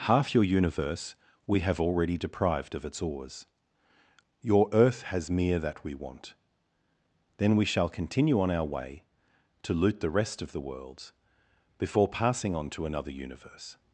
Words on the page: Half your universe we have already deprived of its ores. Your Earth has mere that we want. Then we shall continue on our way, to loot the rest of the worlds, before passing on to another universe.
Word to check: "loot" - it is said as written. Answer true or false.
true